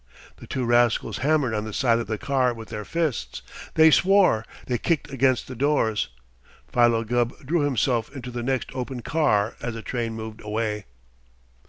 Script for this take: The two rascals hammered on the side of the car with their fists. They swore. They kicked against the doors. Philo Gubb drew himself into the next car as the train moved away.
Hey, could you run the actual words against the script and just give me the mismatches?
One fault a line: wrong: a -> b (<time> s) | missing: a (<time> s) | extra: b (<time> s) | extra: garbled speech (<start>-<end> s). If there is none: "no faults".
extra: open (8.7 s)